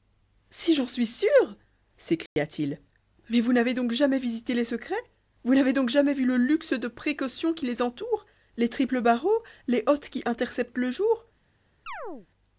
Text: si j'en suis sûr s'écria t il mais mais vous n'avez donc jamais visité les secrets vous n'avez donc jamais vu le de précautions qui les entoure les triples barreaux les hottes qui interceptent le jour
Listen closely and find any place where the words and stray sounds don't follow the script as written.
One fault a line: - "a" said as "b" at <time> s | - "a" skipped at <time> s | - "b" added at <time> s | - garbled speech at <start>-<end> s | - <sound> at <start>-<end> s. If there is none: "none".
- dropout at 2.3-2.4 s
- "mais" skipped at 3.4 s
- "luxe" added at 6.4 s
- chirp at 11.9-12.3 s